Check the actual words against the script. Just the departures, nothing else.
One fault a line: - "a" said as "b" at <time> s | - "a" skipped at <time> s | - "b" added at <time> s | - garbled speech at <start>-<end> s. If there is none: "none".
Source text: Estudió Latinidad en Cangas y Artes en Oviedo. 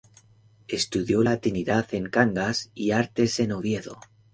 none